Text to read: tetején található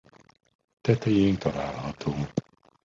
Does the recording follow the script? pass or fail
pass